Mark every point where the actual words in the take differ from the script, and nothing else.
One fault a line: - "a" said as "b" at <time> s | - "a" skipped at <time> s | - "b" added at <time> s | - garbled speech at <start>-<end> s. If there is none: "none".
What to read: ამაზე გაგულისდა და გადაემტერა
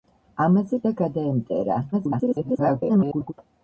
- "გაგულისდა" skipped at 0.8 s
- garbled speech at 1.9-3.3 s